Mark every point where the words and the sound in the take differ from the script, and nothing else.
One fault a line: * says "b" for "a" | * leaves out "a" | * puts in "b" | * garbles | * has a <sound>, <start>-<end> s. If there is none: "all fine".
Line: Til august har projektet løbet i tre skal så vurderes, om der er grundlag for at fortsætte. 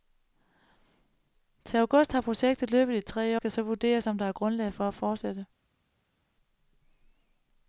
all fine